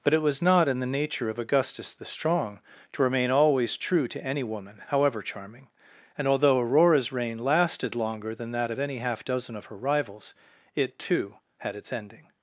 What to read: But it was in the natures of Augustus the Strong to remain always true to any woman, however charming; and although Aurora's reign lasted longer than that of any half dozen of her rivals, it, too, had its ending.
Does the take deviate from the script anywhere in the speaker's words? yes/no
yes